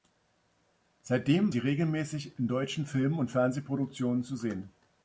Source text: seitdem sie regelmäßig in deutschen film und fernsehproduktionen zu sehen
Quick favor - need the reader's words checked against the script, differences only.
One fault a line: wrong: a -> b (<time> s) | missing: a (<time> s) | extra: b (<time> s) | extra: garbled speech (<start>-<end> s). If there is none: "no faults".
no faults